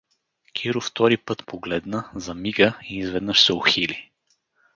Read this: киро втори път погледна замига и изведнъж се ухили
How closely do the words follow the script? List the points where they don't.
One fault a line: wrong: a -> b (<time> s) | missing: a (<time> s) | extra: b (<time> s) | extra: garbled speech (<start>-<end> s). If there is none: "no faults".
no faults